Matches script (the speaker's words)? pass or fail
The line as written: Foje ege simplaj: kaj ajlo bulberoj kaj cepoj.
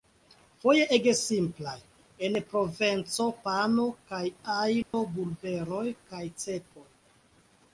fail